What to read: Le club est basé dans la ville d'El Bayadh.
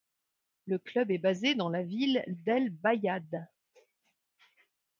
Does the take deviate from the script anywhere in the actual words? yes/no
no